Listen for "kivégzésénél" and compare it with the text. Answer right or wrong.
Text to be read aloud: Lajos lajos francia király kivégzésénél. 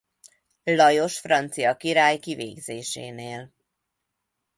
right